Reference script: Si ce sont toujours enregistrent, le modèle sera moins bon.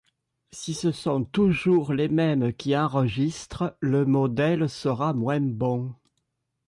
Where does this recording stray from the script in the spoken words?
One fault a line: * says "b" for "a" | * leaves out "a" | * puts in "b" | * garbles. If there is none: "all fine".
* puts in "les mêmes qui"